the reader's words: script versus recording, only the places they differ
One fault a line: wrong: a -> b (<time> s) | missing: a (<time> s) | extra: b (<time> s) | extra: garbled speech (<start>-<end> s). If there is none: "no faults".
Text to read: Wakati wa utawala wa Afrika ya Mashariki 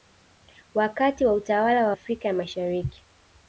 no faults